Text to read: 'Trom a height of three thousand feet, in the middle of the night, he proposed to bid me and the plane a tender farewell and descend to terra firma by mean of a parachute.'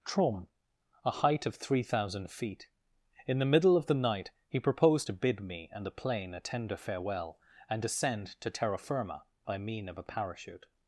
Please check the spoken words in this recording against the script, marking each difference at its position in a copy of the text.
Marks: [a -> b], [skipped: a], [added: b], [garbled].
'Trom a height of three thousand feet, in the middle of the night, he proposed to bid me and the plane a tender farewell and descend to terra firma by mean of a parachute.'